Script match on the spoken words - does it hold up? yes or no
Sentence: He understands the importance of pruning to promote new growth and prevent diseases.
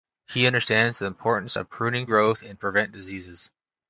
no